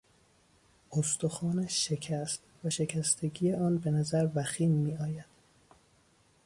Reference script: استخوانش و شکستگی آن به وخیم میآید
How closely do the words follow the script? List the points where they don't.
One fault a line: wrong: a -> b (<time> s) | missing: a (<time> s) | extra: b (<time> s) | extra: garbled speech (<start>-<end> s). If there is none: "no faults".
extra: شکست (1.9 s)
extra: نظر (3.9 s)